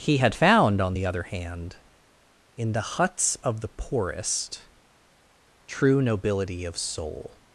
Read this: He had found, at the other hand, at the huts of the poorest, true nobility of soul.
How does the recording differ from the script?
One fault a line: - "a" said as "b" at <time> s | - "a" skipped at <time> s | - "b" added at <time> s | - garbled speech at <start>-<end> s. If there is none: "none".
- "at" said as "on" at 0.8 s
- "at" said as "in" at 2.5 s